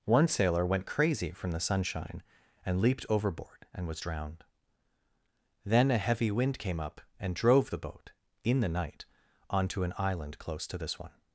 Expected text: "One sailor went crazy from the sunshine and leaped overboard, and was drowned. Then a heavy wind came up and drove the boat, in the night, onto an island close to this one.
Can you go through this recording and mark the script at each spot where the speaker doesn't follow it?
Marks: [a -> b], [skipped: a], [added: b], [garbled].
"One sailor went crazy from the sunshine and leaped overboard, and was drowned. Then a heavy wind came up and drove the boat, in the night, onto an island close to this one.